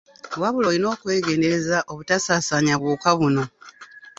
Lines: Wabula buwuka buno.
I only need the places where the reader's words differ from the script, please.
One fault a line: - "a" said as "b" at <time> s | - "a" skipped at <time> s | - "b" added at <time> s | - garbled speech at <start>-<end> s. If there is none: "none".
- "olina okwegendereza obutasaasaanya" added at 0.7 s